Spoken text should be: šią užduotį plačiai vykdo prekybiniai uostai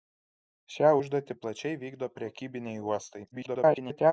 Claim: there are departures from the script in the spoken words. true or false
true